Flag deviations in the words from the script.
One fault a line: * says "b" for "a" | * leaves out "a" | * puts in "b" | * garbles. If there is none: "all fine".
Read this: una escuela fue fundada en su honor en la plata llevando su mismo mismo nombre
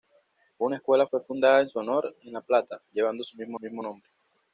all fine